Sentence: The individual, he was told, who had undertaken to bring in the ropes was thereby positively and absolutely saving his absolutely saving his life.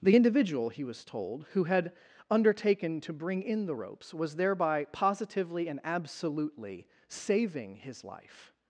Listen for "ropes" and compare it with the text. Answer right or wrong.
right